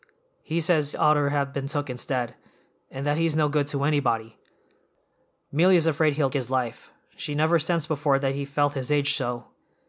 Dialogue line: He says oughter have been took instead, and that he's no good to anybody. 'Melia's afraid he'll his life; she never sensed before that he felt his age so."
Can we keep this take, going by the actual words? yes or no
yes